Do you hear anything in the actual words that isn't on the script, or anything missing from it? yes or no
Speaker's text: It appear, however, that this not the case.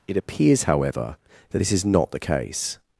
yes